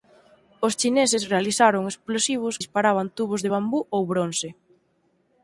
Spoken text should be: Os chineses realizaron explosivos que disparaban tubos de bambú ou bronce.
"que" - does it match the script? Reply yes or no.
no